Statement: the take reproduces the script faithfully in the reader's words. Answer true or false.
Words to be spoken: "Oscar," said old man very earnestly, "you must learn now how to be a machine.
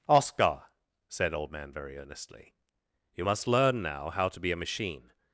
true